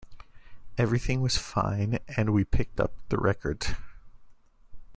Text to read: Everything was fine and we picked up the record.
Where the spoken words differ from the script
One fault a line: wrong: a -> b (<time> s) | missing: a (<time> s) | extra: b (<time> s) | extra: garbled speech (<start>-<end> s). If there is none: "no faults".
no faults